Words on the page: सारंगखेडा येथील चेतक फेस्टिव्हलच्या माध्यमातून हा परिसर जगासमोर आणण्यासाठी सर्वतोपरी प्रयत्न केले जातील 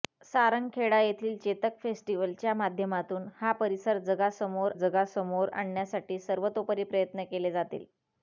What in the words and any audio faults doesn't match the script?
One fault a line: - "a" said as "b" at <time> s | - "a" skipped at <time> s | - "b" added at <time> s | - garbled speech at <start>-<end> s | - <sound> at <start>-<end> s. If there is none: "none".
- "जगासमोर" added at 4.7 s